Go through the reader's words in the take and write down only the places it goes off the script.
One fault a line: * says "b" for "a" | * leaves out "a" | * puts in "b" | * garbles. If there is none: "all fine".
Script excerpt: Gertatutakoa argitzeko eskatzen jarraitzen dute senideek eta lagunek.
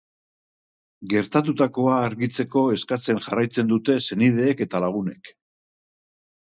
all fine